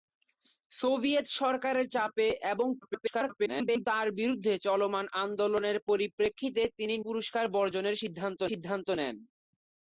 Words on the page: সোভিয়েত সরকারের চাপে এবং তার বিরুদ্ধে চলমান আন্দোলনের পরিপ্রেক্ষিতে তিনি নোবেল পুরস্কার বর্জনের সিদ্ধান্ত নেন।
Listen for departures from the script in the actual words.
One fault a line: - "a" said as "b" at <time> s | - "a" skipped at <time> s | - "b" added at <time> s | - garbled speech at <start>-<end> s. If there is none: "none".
- garbled speech at 2.8-3.9 s
- "নোবেল" skipped at 7.0 s
- "সিদ্ধান্ত" added at 8.5 s